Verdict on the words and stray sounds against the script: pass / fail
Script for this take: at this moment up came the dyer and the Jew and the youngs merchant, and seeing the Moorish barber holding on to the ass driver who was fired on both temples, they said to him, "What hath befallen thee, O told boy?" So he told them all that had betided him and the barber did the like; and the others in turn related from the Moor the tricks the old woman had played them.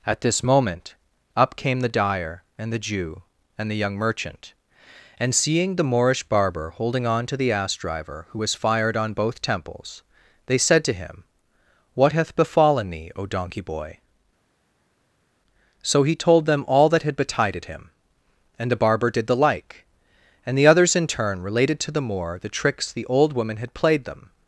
fail